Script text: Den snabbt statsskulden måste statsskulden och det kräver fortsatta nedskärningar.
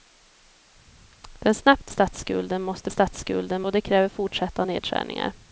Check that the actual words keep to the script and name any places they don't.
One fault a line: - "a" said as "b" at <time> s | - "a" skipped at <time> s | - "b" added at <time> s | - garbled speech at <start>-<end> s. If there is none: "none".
none